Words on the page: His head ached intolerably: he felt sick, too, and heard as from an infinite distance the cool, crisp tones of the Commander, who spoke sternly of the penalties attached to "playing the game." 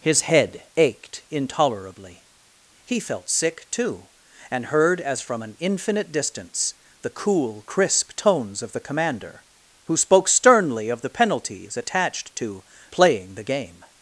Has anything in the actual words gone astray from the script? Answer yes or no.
no